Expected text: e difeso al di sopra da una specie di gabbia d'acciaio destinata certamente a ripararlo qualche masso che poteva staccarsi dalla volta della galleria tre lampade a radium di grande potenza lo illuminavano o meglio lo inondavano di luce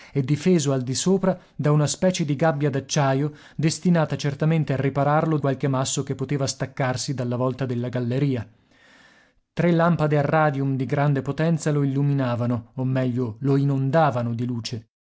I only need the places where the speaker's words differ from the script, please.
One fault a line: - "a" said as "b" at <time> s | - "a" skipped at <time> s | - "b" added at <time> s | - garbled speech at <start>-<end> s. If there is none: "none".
none